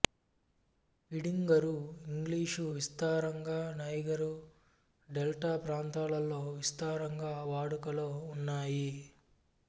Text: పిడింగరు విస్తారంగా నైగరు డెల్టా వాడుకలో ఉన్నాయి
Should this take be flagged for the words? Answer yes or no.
yes